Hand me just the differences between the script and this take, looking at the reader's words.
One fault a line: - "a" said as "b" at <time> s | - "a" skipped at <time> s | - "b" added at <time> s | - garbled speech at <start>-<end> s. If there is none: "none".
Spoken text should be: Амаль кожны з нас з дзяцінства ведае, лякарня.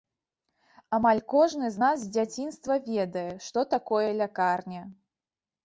- "што такое" added at 3.5 s